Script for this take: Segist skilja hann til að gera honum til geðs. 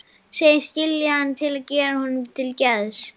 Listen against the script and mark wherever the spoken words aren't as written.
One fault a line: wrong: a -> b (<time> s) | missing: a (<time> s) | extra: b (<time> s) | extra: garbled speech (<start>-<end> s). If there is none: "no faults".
no faults